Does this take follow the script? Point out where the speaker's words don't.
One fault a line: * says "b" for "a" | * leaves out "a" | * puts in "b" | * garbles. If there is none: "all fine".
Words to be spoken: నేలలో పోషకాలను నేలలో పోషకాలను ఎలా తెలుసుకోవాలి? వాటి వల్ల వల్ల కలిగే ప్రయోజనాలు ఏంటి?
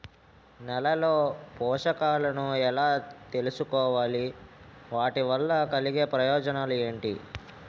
* leaves out "నేలలో పోషకాలను"
* leaves out "వల్ల"